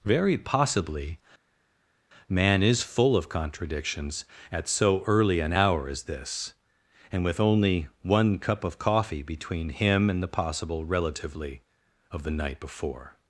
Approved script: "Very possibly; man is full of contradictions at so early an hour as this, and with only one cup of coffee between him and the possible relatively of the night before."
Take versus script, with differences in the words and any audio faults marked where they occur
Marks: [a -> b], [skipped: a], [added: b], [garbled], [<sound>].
"Very possibly; man is full of contradictions at so early an hour as this, and with only one cup of coffee between him and the possible relatively of the night before."